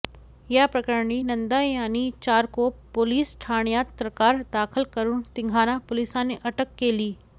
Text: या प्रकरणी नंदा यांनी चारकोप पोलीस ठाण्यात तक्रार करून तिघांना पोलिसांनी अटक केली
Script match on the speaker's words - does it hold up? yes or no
no